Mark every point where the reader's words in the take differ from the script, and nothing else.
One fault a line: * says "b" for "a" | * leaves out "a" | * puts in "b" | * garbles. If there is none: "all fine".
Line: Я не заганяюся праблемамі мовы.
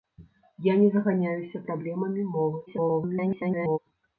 * garbles